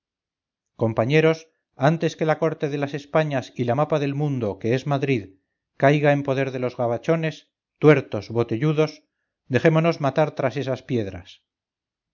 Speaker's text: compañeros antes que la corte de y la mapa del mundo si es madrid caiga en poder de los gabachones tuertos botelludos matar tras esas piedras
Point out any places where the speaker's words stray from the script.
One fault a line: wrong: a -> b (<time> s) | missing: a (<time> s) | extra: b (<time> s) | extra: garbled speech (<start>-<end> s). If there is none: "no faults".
extra: las españas (2.8 s)
wrong: si -> que (4.6 s)
extra: dejémonos (9.5 s)